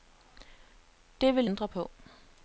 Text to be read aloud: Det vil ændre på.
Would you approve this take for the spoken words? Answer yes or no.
yes